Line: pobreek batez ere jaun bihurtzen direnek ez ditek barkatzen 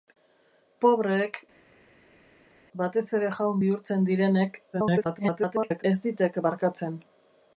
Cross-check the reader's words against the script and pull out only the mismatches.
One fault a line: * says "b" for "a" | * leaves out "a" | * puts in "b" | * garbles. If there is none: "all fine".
* garbles